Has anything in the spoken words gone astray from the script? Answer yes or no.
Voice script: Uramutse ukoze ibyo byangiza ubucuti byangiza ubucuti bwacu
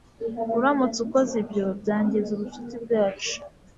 yes